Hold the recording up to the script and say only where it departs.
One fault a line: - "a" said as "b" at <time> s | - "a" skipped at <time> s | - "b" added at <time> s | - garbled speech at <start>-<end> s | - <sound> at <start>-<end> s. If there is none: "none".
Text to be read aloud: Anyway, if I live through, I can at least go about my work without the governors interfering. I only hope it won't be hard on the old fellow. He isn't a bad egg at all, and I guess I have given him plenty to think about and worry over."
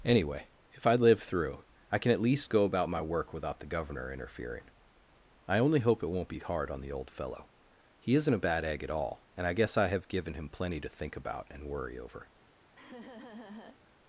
- "governors" said as "governor" at 3.7 s
- laugh at 12.8-13.8 s